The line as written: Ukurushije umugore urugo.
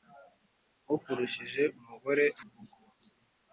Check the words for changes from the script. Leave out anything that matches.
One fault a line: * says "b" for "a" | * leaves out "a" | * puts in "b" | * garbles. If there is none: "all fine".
all fine